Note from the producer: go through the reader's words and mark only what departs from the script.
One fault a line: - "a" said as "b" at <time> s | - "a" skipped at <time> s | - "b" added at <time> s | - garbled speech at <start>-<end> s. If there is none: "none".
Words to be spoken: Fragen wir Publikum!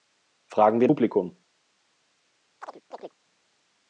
none